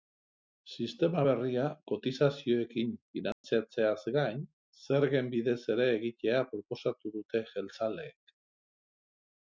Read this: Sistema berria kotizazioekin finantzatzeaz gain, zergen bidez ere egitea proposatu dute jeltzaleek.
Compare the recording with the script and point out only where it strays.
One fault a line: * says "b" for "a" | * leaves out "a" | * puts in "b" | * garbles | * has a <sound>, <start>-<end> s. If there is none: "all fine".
* has a dropout, 3.3-3.4 s